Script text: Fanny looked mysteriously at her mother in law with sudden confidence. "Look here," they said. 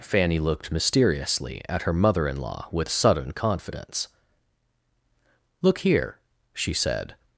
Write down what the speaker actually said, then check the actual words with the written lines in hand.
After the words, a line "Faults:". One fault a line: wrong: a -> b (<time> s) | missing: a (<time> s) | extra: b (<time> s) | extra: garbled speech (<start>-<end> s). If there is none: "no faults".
Fanny looked mysteriously at her mother in law with sudden confidence. "Look here," she said.
Faults:
wrong: they -> she (6.5 s)